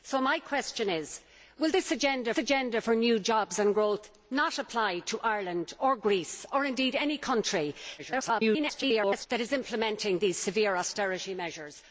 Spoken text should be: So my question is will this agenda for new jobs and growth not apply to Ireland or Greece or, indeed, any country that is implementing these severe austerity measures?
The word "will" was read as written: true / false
true